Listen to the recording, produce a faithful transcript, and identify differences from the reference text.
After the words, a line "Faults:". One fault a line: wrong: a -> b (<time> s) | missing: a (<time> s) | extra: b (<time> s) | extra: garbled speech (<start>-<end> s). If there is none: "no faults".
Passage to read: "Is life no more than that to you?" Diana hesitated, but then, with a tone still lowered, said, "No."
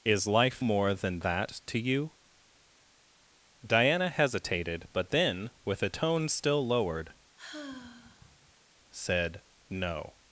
"Is life more than that to you?" Diana hesitated, but then, with a tone still lowered, said, "No."
Faults:
missing: no (0.6 s)